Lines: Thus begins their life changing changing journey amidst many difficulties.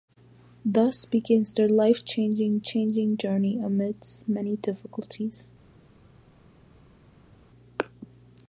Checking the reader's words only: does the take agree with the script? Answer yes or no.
yes